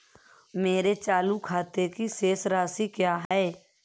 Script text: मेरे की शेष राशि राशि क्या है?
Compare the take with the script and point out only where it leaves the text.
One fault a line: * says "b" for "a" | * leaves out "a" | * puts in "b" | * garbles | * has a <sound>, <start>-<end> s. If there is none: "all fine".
* puts in "चालू खाते"
* leaves out "राशि"
* has a dropout, 3.3-3.3 s